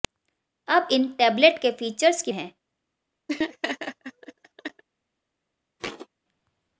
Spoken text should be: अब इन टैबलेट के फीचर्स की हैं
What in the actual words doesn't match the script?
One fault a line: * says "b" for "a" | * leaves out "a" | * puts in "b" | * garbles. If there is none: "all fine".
all fine